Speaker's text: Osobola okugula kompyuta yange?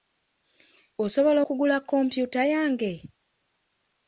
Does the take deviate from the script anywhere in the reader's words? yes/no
no